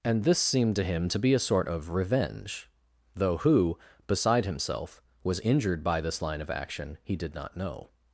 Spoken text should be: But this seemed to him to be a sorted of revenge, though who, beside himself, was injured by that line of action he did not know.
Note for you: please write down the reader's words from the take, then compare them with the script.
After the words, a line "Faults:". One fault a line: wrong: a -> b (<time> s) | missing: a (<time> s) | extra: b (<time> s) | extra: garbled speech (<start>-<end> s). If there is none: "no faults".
And this seemed to him to be a sort of revenge, though who, beside himself, was injured by this line of action he did not know.
Faults:
wrong: But -> And (0.0 s)
wrong: sorted -> sort (1.4 s)
wrong: that -> this (6.0 s)